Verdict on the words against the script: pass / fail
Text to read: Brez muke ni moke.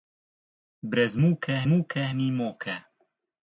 fail